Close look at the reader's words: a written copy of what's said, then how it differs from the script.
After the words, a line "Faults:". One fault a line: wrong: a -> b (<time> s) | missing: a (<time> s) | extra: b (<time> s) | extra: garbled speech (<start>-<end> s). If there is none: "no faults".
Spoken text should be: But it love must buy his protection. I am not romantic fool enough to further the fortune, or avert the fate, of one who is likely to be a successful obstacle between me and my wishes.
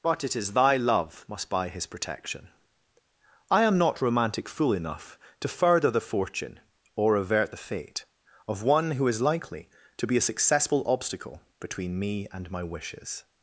But it is thy love must buy his protection. I am not romantic fool enough to further the fortune, or avert the fate, of one who is likely to be a successful obstacle between me and my wishes.
Faults:
extra: is thy (0.3 s)